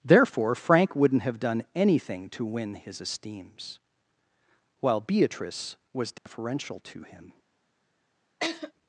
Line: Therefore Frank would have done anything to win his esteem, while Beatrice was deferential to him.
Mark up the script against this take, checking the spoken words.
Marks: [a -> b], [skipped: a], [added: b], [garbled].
Therefore Frank [would -> wouldn't] have done anything to win his [esteem, -> esteems] while Beatrice was deferential to him.